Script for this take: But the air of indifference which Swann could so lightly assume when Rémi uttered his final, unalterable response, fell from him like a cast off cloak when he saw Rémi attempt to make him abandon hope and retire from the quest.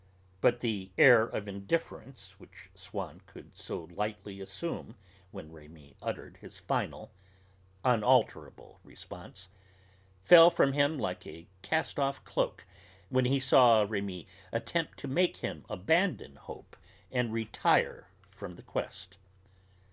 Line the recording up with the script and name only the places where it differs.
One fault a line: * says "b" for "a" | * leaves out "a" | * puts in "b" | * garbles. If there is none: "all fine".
all fine